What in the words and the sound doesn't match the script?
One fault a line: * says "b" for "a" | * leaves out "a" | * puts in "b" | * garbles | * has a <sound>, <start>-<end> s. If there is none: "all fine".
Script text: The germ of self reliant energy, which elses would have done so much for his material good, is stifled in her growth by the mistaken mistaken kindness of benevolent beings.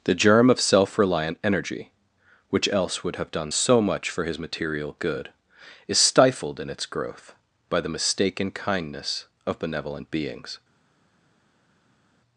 * says "else" for "elses"
* says "its" for "her"
* leaves out "mistaken"